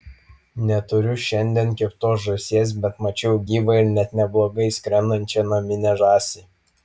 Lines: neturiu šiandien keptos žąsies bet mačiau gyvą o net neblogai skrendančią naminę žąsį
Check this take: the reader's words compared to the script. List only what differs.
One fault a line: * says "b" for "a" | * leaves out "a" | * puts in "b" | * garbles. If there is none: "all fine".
* says "ir" for "o"